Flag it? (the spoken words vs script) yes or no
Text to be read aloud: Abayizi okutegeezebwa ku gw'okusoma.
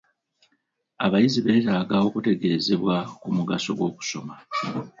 yes